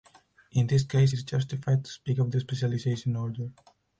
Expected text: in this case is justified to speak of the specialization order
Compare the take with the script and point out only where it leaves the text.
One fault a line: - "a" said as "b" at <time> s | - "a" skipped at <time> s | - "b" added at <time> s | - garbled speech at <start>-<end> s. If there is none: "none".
none